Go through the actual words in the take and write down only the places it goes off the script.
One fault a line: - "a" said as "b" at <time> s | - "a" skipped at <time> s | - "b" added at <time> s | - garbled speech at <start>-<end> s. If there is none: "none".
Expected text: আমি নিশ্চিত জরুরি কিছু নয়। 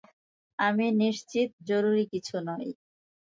none